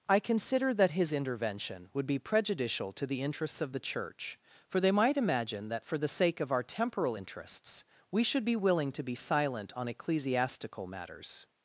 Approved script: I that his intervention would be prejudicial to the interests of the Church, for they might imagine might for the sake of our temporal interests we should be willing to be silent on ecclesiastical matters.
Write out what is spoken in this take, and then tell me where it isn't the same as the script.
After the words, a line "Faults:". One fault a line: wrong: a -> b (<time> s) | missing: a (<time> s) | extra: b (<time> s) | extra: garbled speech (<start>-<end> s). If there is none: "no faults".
I consider that his intervention would be prejudicial to the interests of the Church, for they might imagine that for the sake of our temporal interests we should be willing to be silent on ecclesiastical matters.
Faults:
extra: consider (0.2 s)
wrong: might -> that (5.7 s)